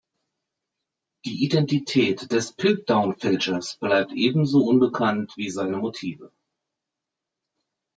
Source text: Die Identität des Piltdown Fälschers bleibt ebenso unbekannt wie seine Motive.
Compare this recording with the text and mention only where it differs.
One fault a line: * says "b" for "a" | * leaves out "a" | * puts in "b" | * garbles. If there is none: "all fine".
all fine